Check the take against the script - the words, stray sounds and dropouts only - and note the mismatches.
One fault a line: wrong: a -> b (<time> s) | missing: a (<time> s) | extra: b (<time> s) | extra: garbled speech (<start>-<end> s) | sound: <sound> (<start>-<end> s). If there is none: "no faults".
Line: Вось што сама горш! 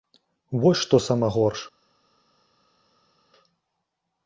no faults